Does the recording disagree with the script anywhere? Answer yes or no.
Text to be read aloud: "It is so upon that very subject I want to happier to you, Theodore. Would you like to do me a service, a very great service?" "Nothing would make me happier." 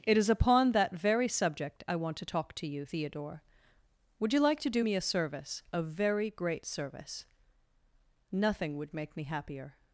yes